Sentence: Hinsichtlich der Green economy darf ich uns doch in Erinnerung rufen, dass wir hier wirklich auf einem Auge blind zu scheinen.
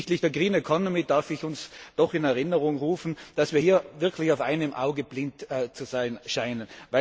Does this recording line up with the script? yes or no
no